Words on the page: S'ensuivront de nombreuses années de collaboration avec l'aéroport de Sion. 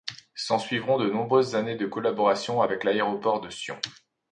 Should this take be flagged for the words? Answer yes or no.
no